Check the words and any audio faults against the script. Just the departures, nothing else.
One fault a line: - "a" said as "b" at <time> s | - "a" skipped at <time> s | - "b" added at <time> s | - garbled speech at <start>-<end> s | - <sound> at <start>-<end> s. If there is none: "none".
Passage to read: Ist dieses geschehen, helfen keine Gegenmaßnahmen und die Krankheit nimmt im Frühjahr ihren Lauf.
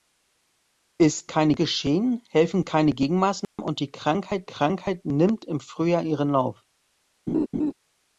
- "dieses" said as "keine" at 1.3 s
- dropout at 3.4-3.6 s
- "Krankheit" added at 4.4 s
- laugh at 7.3-7.7 s